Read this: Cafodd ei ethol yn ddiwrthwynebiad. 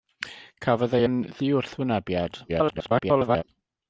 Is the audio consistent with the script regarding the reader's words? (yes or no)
no